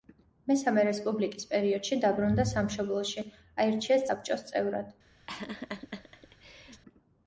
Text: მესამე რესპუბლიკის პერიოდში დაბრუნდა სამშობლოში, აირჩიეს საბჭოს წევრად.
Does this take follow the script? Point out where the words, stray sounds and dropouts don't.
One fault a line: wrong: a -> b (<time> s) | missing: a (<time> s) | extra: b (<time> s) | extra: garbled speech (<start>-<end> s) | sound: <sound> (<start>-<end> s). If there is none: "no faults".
sound: laugh (5.3-6.8 s)